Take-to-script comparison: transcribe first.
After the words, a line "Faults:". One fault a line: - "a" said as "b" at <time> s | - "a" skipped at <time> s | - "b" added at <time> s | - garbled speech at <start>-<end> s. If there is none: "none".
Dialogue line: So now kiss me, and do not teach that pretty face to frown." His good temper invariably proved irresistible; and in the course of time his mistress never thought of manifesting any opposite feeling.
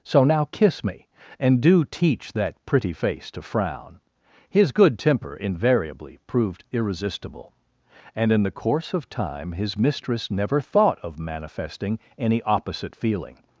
So now kiss me, and do teach that pretty face to frown." His good temper invariably proved irresistible; and in the course of time his mistress never thought of manifesting any opposite feeling.
Faults:
- "not" skipped at 1.9 s